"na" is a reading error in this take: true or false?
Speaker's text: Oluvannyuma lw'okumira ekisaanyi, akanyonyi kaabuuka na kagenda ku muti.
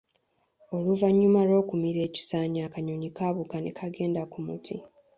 true